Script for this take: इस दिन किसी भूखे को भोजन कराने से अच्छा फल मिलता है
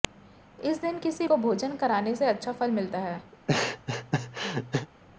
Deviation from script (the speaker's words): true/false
true